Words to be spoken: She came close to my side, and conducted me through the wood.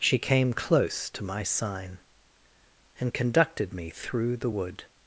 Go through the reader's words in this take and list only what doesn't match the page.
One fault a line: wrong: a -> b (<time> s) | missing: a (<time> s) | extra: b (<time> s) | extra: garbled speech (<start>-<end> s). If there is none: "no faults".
wrong: side -> sign (1.4 s)